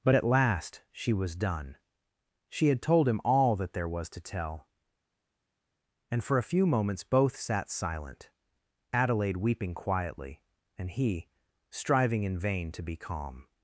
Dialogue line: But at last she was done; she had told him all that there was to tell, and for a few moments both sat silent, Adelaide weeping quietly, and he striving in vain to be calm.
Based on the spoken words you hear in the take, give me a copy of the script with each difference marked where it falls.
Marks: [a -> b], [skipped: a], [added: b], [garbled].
But at last she was done; she had told him all that there was to tell, and for a few moments both sat silent, Adelaide weeping quietly, and he striving in vain to be calm.